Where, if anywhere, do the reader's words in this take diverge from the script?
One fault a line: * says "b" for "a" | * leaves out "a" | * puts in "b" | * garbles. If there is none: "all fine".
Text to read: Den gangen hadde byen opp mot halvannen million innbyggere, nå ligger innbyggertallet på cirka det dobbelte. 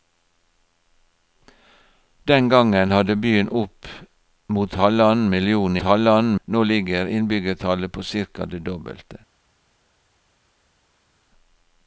* says "halvannen" for "innbyggere"